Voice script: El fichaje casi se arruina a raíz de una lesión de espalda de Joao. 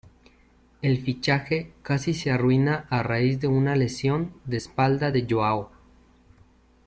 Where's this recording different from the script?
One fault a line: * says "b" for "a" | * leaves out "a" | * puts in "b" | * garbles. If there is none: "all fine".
all fine